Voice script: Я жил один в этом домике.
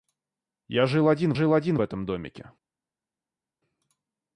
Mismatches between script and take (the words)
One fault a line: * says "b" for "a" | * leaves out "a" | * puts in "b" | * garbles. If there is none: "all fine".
* puts in "жил один"